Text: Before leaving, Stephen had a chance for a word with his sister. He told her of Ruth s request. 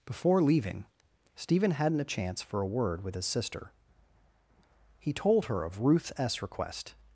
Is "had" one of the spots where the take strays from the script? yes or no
yes